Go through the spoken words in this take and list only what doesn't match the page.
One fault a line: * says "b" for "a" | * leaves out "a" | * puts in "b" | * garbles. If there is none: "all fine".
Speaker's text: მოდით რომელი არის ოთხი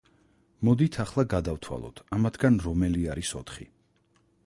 * puts in "ახლა გადავთვალოთ ამათგან"